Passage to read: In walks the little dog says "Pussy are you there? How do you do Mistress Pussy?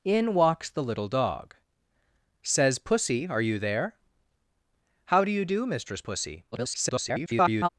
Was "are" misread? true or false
false